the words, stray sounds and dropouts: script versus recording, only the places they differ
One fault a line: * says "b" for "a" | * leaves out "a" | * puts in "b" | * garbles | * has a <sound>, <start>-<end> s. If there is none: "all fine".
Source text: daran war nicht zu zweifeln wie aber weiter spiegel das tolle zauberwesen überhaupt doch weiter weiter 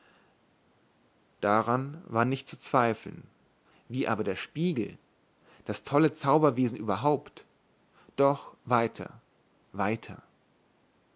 * says "der" for "weiter"